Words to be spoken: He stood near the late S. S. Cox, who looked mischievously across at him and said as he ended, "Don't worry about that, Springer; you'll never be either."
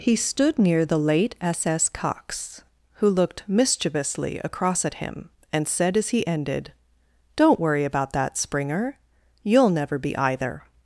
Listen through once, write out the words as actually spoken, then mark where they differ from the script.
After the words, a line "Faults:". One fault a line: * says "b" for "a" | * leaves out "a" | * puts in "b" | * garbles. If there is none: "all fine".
He stood near the late S. S. Cox, who looked mischievously across at him and said as he ended, "Don't worry about that, Springer; you'll never be either."
Faults:
all fine